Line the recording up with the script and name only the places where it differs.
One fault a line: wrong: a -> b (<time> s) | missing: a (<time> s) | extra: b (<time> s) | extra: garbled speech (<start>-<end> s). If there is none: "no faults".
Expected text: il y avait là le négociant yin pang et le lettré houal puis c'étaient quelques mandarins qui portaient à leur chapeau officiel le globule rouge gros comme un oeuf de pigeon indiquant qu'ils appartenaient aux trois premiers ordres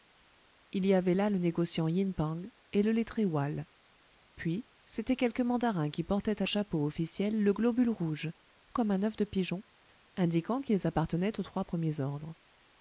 missing: leur (6.5 s)
missing: gros (8.3 s)